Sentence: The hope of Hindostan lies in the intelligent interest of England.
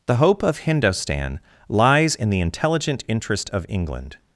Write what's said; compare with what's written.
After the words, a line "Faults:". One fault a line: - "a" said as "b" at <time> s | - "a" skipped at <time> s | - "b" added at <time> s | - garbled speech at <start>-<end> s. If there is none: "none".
The hope of Hindostan lies in the intelligent interest of England.
Faults:
none